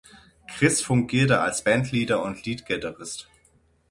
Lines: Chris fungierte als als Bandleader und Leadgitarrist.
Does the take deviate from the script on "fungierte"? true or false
false